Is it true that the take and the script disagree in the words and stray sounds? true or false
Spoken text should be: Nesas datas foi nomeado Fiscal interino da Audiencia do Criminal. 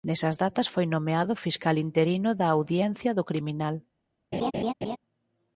true